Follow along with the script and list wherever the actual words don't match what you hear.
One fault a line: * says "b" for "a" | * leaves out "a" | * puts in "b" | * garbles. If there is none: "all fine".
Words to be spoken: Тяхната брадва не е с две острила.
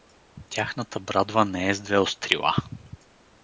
all fine